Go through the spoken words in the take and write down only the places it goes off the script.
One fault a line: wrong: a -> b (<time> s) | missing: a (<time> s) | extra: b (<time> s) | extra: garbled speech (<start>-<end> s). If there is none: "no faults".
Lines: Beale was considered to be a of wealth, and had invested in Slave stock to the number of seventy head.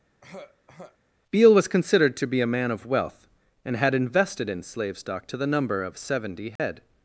extra: man (2.5 s)